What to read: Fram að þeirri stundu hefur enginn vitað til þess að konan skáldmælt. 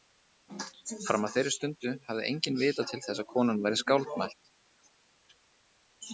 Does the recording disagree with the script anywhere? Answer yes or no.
yes